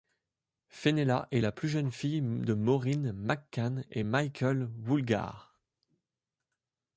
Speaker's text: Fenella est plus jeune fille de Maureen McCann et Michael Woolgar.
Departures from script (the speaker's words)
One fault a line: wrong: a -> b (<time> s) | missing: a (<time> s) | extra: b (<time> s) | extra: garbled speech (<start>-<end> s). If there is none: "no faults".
extra: la (1.4 s)